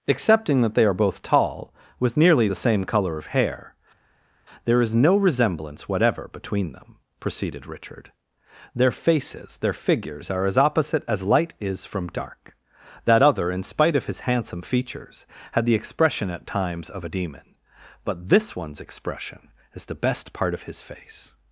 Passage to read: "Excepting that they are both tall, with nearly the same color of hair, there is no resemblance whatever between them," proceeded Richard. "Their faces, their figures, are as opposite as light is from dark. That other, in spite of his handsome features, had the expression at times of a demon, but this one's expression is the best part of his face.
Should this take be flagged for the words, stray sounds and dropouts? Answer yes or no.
no